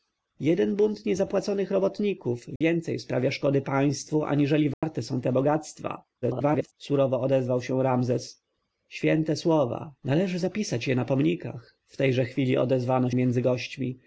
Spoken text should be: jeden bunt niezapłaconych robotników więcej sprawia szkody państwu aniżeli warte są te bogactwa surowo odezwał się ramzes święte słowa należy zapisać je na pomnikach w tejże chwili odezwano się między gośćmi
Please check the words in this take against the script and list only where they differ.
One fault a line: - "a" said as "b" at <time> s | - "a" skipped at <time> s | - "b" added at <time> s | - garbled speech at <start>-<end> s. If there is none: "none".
- garbled speech at 6.2-6.7 s
- "się" skipped at 13.1 s